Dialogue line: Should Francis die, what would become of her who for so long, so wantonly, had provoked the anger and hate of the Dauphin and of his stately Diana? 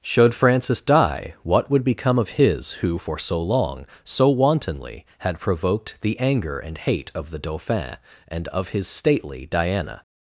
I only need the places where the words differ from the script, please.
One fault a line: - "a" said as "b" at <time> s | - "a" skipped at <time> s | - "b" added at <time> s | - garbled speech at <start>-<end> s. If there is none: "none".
- "her" said as "his" at 2.3 s